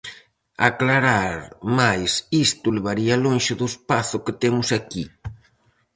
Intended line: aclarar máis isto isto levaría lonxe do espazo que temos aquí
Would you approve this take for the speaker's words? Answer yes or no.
no